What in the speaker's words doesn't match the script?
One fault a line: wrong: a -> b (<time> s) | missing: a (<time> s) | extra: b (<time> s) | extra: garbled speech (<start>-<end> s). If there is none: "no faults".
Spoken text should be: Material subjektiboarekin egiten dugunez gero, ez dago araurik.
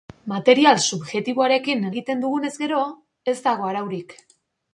no faults